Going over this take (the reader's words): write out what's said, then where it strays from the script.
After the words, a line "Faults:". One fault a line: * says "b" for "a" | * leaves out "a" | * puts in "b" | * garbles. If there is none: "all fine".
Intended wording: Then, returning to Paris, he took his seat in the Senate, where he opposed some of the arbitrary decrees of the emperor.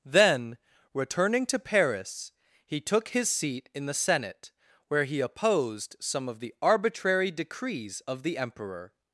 Then, returning to Paris, he took his seat in the Senate, where he opposed some of the arbitrary decrees of the emperor.
Faults:
all fine